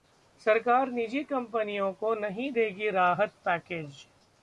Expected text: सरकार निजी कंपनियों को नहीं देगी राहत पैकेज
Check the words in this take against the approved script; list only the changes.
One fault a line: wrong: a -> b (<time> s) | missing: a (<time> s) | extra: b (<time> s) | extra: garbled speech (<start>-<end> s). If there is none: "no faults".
no faults